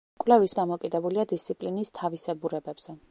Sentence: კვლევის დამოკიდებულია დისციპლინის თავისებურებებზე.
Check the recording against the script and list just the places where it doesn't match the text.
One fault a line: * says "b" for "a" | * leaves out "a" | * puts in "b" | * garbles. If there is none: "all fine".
all fine